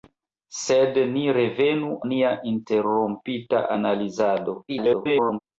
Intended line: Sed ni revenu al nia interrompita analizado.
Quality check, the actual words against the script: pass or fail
fail